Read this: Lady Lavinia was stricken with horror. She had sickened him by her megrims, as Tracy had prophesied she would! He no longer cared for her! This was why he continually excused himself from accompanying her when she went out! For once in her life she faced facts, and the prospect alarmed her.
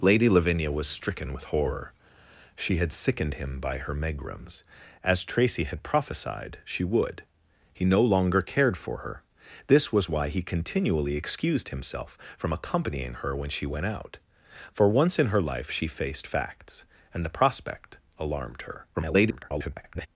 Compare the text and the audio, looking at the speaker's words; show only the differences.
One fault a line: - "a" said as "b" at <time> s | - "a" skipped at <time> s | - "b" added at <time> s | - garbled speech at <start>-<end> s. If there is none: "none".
- garbled speech at 18.9-20.1 s